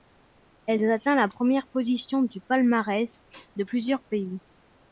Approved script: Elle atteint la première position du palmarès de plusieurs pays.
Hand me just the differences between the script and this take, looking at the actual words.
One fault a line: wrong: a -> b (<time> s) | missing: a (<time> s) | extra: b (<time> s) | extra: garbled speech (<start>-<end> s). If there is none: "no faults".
no faults